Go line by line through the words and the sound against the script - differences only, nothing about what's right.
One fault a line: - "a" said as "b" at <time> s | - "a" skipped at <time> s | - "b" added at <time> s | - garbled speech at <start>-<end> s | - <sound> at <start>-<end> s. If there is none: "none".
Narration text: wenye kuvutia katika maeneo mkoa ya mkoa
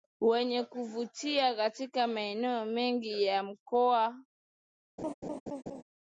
- "mkoa" said as "mengi" at 2.6 s
- laugh at 5.0-5.8 s